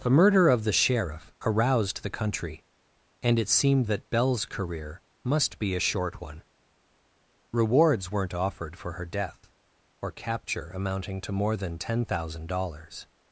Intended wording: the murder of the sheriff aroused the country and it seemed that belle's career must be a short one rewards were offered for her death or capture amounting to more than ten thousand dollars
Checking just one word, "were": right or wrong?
wrong